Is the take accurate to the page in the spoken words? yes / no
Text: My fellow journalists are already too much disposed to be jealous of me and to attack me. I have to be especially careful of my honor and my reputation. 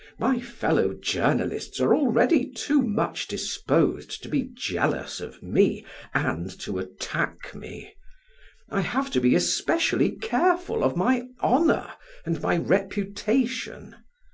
yes